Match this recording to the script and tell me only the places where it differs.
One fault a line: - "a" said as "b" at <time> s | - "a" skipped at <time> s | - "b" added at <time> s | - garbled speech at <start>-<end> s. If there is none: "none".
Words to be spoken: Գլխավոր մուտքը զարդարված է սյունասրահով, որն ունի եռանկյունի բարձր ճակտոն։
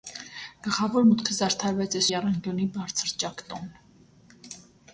- "սյունասրահով որն ունի" skipped at 2.0 s